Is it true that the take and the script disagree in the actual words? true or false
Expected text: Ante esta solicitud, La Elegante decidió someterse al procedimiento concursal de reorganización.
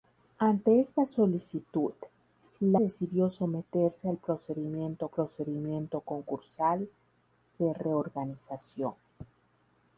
true